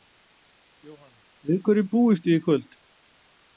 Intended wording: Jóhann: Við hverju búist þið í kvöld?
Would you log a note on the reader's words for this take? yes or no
no